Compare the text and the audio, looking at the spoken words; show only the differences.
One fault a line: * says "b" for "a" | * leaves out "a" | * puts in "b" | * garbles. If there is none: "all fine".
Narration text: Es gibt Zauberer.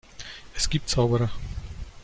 all fine